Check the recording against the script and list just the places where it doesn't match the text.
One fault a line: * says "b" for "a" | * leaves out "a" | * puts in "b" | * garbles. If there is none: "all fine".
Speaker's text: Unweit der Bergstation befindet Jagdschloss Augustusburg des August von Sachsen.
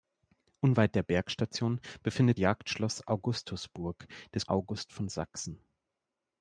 all fine